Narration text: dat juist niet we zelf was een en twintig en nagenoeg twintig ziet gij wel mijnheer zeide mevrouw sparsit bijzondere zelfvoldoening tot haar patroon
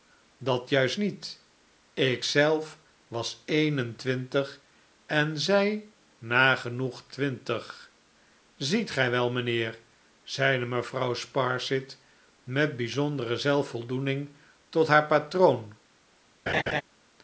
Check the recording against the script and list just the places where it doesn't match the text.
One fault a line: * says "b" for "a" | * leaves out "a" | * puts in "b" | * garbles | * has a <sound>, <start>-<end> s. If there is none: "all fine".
* says "ik" for "we"
* puts in "zij"
* puts in "met"
* has a laugh, 16.5-16.8 s